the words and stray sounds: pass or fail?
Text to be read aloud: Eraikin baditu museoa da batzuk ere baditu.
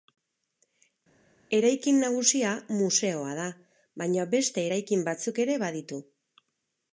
fail